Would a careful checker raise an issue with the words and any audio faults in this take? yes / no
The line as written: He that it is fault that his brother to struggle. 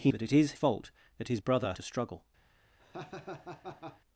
yes